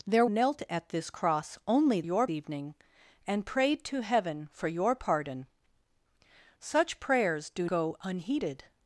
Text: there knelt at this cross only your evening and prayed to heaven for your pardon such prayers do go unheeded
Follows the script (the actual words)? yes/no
yes